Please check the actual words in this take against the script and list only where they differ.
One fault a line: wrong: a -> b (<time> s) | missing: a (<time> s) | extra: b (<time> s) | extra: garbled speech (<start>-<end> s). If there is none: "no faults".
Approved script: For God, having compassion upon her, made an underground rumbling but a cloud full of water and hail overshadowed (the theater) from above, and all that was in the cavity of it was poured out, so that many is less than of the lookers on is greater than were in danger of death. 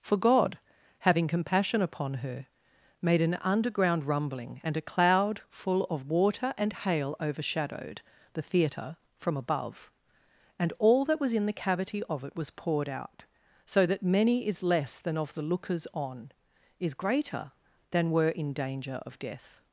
wrong: but -> and (4.6 s)